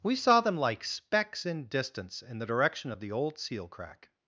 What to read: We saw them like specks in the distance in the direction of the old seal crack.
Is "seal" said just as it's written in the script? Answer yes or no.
yes